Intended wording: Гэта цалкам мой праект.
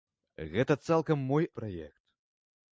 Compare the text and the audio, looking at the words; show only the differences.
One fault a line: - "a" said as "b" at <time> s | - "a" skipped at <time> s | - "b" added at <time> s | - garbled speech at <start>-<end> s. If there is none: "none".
none